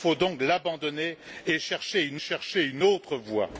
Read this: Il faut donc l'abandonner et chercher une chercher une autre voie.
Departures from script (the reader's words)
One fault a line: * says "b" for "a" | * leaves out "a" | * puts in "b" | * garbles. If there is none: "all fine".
all fine